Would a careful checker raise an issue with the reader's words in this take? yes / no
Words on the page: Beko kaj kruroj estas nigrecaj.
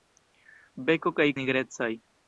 yes